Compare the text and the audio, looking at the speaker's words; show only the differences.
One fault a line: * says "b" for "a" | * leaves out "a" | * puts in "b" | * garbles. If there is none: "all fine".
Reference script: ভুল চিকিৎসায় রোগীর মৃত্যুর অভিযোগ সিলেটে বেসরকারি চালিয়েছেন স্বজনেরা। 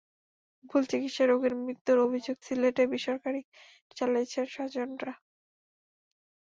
all fine